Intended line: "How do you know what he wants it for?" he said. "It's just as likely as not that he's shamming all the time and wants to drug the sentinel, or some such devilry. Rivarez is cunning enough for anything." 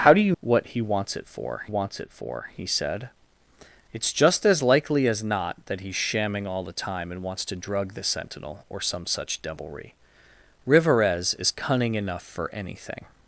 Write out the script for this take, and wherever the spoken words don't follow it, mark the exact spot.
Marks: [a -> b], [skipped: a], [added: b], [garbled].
"How do you [skipped: know] what he wants it for?" [added: wants it for] he said. "It's just as likely as not that he's shamming all the time and wants to drug the sentinel, or some such devilry. Rivarez is cunning enough for anything."